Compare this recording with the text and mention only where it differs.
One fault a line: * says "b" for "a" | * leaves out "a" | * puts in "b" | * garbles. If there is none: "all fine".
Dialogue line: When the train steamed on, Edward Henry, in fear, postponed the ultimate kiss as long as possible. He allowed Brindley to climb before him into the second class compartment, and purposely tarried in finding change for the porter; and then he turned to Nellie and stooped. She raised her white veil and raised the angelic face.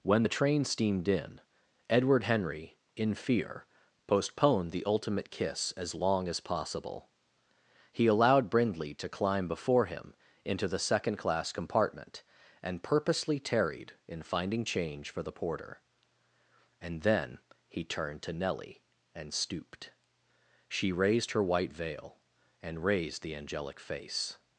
* says "in" for "on"